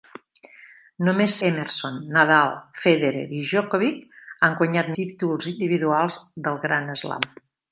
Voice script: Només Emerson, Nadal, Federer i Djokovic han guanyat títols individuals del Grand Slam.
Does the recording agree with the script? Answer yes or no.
yes